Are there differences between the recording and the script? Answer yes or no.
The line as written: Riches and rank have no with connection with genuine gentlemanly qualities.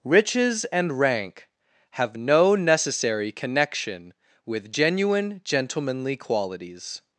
yes